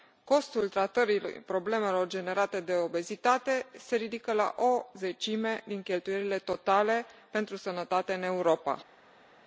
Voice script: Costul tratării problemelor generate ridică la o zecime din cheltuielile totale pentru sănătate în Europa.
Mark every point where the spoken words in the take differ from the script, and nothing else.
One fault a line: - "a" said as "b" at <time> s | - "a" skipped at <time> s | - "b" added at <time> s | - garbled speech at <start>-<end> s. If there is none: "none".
- "de obezitate se" added at 2.6 s